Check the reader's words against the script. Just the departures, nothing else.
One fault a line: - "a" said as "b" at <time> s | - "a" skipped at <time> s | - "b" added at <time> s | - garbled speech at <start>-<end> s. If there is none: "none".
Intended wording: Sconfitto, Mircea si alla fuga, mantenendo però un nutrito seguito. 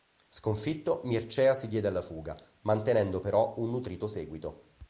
- "diede" added at 1.7 s